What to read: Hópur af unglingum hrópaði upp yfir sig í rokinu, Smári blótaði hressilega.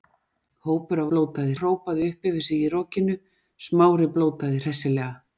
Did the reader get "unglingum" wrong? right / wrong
wrong